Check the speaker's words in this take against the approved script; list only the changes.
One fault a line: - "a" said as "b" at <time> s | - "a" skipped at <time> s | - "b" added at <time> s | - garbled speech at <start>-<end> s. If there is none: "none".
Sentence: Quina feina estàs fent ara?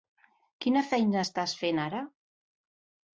none